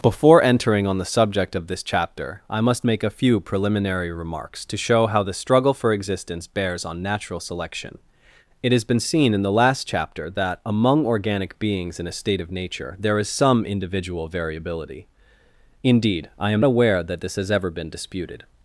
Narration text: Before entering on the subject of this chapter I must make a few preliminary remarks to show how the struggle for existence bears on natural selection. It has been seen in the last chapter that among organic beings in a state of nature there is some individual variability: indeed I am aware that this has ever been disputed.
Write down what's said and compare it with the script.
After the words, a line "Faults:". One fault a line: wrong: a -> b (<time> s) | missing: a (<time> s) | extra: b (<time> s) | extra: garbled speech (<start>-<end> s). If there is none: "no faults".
Before entering on the subject of this chapter I must make a few preliminary remarks to show how the struggle for existence bears on natural selection. It has been seen in the last chapter that among organic beings in a state of nature there is some individual variability: indeed I am aware that this has ever been disputed.
Faults:
no faults